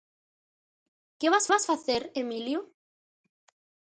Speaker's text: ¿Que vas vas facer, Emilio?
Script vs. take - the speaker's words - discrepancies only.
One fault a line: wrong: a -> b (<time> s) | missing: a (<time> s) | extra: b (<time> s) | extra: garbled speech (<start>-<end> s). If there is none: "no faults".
no faults